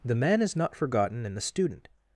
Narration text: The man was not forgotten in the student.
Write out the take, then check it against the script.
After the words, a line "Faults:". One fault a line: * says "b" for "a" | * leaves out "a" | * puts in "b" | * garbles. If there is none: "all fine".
The man is not forgotten in the student.
Faults:
* says "is" for "was"